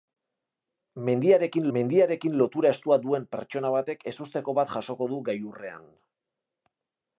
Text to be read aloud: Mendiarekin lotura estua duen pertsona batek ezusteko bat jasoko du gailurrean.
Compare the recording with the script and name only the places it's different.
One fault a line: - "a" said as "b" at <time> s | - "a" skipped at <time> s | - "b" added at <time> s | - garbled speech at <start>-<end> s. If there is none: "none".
- "mendiarekin" added at 1.8 s